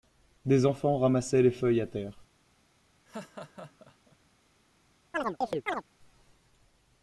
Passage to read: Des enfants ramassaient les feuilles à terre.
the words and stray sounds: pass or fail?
fail